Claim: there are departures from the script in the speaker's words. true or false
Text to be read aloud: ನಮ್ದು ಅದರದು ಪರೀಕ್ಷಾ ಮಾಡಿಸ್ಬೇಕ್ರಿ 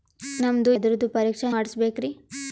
false